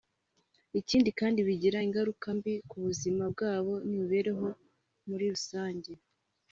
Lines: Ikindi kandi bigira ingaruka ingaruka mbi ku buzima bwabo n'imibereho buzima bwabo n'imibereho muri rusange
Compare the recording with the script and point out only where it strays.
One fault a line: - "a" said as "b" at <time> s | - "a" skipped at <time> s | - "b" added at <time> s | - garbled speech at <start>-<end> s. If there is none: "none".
- "ingaruka" skipped at 2.3 s
- "buzima bwabo n'imibereho" skipped at 4.5 s